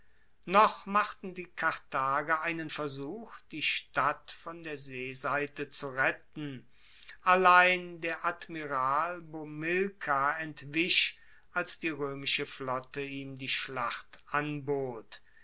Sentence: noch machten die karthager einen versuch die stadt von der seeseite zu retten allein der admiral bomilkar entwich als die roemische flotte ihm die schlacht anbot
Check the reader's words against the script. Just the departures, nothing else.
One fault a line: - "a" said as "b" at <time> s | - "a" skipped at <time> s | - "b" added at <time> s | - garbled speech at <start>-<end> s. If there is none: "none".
none